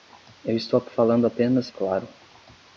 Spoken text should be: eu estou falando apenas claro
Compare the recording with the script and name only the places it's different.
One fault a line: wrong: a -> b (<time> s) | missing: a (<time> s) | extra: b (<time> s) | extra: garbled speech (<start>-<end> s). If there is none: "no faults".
no faults